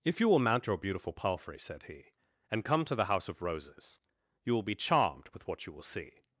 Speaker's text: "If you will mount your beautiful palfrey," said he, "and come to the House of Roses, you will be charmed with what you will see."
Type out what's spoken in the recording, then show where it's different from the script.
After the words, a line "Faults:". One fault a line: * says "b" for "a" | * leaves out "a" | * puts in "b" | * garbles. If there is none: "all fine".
"If you will mount your beautiful palfrey," said he, "and come to the House of Roses, you will be charmed with what you will see."
Faults:
all fine